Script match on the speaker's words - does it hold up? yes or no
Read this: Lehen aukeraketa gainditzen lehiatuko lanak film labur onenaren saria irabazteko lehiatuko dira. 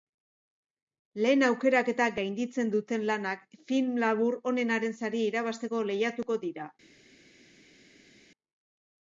no